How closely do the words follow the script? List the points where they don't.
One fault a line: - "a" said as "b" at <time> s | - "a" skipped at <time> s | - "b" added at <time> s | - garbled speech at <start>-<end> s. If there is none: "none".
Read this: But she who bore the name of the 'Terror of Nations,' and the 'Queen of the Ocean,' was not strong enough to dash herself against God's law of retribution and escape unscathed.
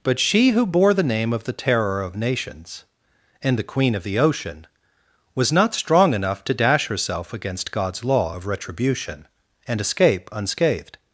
none